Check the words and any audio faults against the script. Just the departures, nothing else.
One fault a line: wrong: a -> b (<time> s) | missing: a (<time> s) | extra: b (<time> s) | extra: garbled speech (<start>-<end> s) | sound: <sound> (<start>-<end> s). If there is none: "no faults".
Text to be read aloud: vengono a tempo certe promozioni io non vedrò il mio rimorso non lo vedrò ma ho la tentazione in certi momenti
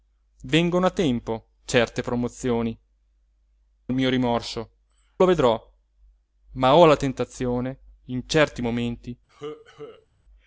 missing: io non vedrò (2.8 s)
missing: non (4.7 s)
sound: cough (9.3-10.1 s)